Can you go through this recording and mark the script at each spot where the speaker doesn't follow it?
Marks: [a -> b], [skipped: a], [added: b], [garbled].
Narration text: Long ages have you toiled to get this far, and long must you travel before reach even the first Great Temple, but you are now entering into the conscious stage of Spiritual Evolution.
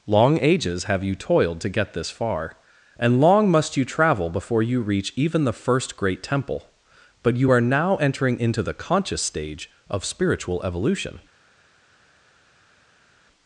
Long ages have you toiled to get this far, and long must you travel before [added: you] reach even the first Great Temple, but you are now entering into the conscious stage of Spiritual Evolution.